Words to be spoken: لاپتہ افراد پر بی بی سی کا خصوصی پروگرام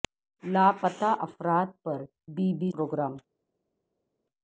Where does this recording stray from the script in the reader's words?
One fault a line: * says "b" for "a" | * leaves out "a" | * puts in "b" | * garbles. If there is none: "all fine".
* leaves out "سی کا خصوصی"